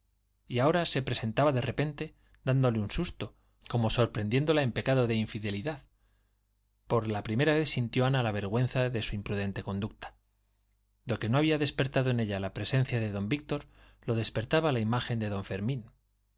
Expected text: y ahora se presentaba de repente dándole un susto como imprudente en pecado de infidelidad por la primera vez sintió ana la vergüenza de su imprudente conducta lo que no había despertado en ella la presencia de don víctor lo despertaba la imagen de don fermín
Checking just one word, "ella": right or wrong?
right